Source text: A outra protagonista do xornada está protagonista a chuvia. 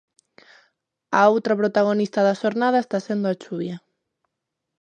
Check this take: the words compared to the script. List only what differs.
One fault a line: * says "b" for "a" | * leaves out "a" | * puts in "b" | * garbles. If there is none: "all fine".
* says "da" for "do"
* says "sendo" for "protagonista"